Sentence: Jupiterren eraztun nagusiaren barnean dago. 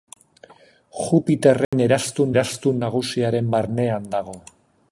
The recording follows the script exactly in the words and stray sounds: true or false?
false